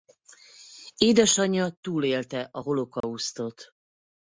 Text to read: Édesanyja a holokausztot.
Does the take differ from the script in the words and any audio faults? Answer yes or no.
yes